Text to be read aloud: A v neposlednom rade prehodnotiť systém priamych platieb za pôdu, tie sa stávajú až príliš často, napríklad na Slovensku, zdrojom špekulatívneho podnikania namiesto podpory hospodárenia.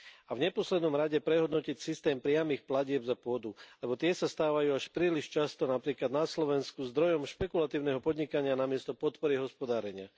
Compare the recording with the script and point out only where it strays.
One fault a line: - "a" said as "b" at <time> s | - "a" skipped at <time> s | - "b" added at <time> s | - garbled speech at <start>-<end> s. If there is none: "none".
- "lebo" added at 3.8 s